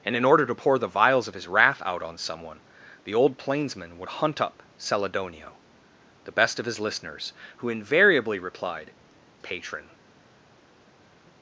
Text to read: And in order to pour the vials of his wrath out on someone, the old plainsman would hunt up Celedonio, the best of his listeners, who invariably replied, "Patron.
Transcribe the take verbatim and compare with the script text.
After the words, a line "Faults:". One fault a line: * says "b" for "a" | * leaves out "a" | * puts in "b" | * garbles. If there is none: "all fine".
And in order to pour the vials of his wrath out on someone, the old plainsman would hunt up Celedonio, the best of his listeners, who invariably replied, "Patron.
Faults:
all fine